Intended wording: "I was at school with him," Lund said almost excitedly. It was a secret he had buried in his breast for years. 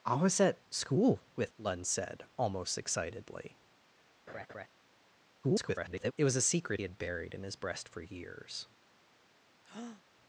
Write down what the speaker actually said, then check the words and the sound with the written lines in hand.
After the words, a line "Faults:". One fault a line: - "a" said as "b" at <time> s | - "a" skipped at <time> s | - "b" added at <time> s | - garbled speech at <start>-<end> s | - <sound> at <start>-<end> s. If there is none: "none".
"I was at school with," Lund said almost excitedly. [garbled] It was a secret had buried in his breast for years.
Faults:
- "him" skipped at 1.5 s
- laugh at 4.3-4.7 s
- garbled speech at 5.4-6.1 s
- "he" skipped at 6.8 s
- breath at 9.6-10.0 s